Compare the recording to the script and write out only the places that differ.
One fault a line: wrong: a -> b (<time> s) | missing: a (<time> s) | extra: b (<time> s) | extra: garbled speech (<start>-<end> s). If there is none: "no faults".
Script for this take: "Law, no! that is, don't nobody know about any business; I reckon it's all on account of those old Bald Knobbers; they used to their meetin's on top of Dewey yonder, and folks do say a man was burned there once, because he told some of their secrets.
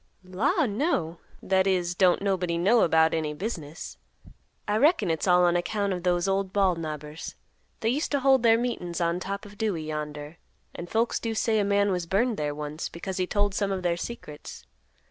extra: hold (8.2 s)